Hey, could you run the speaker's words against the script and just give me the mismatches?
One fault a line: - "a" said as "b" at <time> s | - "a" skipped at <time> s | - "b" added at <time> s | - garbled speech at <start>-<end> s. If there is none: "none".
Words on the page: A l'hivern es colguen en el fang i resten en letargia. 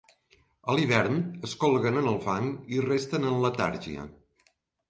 none